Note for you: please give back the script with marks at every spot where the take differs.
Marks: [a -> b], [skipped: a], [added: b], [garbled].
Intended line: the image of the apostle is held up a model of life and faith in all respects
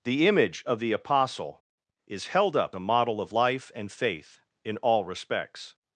the image of the apostle is held up a model of life and faith in all respects